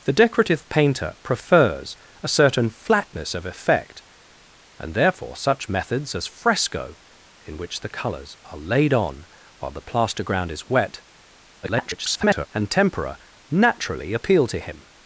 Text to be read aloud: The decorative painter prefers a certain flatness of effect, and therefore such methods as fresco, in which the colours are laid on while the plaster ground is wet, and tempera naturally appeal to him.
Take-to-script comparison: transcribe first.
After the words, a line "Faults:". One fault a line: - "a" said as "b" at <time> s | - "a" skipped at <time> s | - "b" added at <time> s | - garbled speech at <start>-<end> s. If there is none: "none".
The decorative painter prefers a certain flatness of effect, and therefore such methods as fresco, in which the colours are laid on while the plaster ground is wet, [garbled] and tempera naturally appeal to him.
Faults:
- garbled speech at 11.6-12.5 s